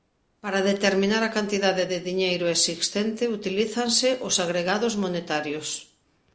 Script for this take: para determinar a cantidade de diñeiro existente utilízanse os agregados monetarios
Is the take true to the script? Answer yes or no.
yes